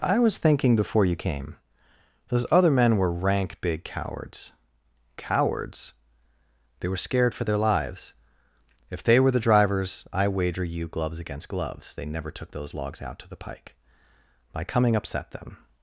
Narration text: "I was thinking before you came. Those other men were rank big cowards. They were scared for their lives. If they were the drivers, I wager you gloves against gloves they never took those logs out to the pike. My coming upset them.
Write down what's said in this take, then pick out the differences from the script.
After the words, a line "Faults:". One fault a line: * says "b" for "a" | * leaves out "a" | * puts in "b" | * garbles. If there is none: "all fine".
"I was thinking before you came. Those other men were rank big cowards cowards. They were scared for their lives. If they were the drivers, I wager you gloves against gloves they never took those logs out to the pike. My coming upset them.
Faults:
* puts in "cowards"